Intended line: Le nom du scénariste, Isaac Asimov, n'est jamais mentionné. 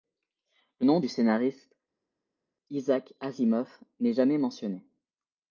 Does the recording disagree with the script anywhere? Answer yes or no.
no